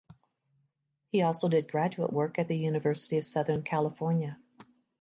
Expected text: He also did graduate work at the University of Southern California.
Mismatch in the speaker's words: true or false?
false